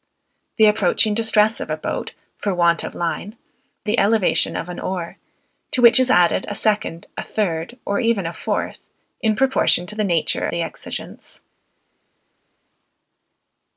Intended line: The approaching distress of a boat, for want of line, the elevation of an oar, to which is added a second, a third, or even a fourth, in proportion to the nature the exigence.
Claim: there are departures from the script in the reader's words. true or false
false